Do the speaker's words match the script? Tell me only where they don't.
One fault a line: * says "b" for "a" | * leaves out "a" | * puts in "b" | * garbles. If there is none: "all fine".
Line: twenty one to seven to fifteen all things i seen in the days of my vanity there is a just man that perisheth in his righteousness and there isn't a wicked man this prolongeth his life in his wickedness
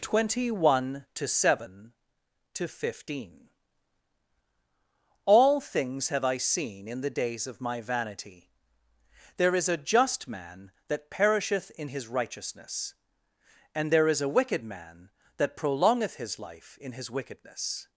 * puts in "have"
* says "is" for "isn't"
* says "that" for "this"